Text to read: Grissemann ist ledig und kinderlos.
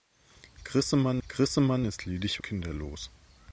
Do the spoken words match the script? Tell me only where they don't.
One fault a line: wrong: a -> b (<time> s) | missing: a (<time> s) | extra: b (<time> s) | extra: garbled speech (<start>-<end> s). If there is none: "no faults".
extra: grissemann (1.3 s)
missing: und (2.4 s)